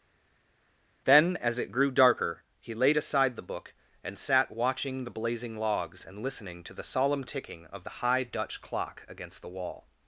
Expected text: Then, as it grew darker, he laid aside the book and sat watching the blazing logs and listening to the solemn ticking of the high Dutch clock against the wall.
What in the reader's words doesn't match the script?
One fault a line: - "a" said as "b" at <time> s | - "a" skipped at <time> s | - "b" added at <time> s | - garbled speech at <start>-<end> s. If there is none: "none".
none